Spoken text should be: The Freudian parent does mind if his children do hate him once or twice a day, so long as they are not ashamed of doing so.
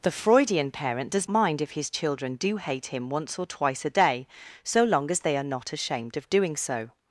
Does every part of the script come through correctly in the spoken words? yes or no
yes